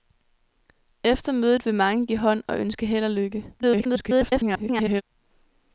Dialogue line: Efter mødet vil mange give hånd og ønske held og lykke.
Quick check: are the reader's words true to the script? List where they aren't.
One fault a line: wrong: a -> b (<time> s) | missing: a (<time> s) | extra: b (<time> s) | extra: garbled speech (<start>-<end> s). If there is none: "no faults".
extra: garbled speech (3.6-5.0 s)